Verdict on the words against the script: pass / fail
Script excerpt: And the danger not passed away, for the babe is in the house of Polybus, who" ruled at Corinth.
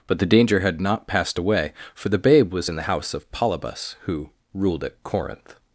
fail